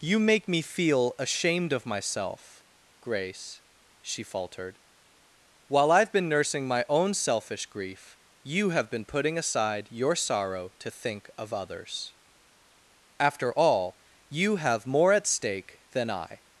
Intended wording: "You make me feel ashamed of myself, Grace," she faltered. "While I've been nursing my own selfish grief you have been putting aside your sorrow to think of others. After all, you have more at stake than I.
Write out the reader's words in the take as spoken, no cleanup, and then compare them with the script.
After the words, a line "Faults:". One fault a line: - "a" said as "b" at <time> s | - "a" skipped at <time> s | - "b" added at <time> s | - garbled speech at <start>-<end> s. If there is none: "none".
"You make me feel ashamed of myself, Grace," she faltered. "While I've been nursing my own selfish grief you have been putting aside your sorrow to think of others. After all, you have more at stake than I.
Faults:
none